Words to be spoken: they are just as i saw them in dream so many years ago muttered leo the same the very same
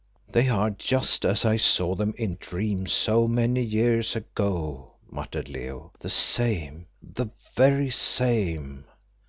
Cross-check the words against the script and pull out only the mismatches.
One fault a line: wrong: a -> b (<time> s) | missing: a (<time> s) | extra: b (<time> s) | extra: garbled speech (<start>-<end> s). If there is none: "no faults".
no faults